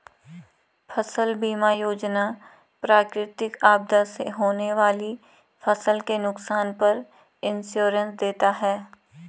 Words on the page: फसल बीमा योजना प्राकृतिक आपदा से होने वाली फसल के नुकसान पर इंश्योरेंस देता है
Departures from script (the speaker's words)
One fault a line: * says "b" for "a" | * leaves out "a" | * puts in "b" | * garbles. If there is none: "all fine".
all fine